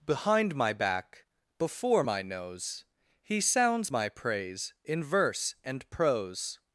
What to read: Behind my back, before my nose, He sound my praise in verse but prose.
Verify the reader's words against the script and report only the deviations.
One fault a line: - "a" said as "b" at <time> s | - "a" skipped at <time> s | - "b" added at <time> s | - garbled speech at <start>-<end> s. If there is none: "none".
- "sound" said as "sounds" at 3.4 s
- "but" said as "and" at 5.6 s